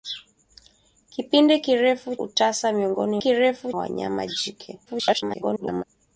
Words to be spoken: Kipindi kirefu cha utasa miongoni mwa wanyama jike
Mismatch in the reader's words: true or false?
true